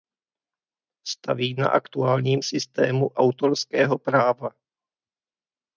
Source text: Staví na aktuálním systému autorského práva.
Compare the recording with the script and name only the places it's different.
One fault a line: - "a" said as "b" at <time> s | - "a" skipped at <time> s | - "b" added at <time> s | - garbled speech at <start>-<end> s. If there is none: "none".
none